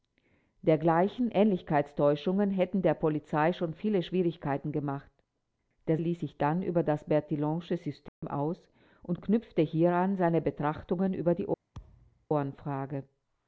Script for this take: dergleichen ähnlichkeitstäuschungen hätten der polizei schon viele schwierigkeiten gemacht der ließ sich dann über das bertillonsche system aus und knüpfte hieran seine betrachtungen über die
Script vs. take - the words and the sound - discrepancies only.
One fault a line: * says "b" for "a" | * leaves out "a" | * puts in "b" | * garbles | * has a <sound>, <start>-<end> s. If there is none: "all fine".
* has a dropout, 8.1-8.2 s
* has a thud, 11.7-12.3 s